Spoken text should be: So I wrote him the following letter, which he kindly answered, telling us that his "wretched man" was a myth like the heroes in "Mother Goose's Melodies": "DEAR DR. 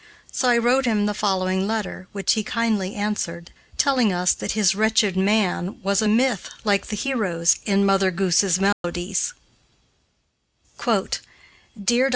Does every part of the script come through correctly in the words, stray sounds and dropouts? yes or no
no